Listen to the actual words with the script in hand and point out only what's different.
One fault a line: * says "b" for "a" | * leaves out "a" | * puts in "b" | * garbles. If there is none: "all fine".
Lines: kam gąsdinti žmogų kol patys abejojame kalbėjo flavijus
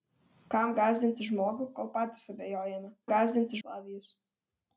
* says "gąsdinti" for "kalbėjo"